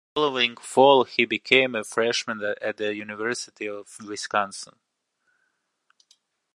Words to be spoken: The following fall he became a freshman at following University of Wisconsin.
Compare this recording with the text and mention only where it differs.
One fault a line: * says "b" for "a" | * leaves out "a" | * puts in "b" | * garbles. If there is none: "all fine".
* says "the" for "following"